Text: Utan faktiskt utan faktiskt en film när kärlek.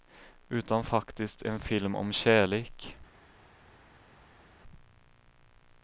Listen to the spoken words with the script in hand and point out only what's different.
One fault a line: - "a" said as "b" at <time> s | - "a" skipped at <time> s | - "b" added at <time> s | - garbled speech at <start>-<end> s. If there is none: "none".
- "utan faktiskt" skipped at 1.4 s
- "när" said as "om" at 2.0 s